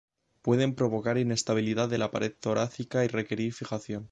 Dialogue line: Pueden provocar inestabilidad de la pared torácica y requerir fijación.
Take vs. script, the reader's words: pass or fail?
pass